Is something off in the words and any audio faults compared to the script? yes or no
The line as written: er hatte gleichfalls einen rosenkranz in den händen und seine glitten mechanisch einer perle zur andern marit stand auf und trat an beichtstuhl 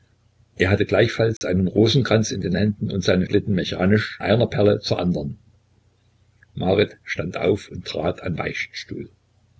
yes